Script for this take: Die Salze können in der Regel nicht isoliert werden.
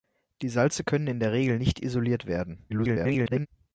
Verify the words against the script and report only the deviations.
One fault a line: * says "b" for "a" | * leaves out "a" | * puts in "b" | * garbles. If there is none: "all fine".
* garbles